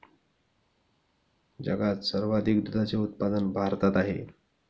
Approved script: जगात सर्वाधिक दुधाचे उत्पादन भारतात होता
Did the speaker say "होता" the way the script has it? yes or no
no